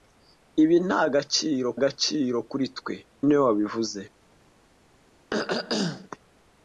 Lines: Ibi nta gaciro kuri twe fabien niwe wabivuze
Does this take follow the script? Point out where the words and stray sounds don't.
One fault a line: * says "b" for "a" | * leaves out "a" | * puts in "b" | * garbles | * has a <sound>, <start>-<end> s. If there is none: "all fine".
* puts in "gaciro"
* leaves out "fabien"
* has a throat clearing, 5.3-6.1 s